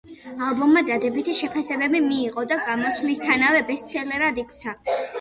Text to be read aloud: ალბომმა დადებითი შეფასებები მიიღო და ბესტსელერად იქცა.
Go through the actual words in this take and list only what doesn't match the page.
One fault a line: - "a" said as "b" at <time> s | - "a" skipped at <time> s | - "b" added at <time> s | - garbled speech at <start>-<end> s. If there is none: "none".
- "გამოსვლისთანავე" added at 2.7 s